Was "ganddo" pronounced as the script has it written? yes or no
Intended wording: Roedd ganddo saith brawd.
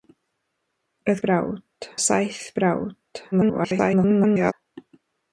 no